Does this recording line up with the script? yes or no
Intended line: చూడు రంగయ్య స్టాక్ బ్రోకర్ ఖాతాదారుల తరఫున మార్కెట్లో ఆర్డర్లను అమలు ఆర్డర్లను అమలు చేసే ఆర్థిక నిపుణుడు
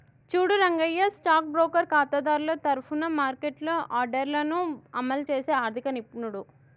no